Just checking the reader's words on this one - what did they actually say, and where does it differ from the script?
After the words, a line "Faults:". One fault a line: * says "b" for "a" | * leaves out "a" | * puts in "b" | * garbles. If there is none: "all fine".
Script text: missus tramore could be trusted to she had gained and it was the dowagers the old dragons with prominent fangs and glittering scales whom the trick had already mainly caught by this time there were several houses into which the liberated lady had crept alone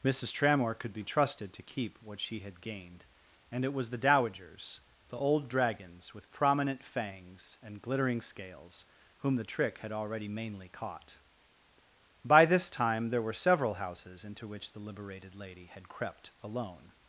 missus tramore could be trusted to keep what she had gained and it was the dowagers the old dragons with prominent fangs and glittering scales whom the trick had already mainly caught by this time there were several houses into which the liberated lady had crept alone
Faults:
* puts in "keep what"